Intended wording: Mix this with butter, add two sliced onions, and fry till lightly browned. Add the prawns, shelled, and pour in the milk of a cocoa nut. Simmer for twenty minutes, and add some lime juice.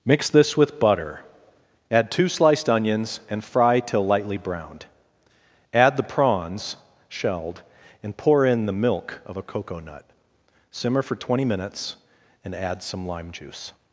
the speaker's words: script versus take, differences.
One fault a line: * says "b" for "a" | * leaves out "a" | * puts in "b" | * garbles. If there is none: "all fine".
all fine